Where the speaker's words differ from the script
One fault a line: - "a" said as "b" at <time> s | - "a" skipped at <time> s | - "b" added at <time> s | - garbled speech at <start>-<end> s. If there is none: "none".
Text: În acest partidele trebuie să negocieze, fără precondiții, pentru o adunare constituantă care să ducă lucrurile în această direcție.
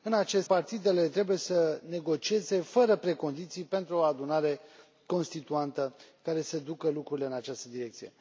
none